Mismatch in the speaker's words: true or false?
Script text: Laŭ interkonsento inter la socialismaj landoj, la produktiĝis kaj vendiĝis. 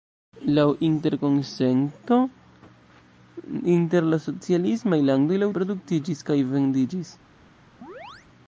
false